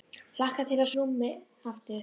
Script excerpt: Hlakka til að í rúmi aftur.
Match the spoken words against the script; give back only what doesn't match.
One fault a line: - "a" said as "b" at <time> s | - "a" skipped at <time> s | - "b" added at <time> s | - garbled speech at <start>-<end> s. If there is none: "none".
none